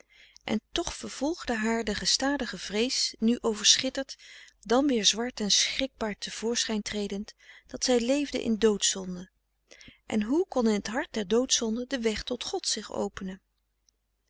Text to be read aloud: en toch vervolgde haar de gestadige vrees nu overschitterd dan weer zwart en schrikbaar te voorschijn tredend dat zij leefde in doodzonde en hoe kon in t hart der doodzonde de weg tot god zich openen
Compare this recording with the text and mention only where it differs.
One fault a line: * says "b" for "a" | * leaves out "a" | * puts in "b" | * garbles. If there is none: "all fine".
all fine